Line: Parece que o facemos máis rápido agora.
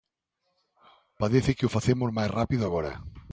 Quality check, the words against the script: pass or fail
pass